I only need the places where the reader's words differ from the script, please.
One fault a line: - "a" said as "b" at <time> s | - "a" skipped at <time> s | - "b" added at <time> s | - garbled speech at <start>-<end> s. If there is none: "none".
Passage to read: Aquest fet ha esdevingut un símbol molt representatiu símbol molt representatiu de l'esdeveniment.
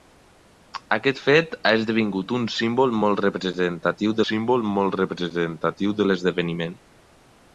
none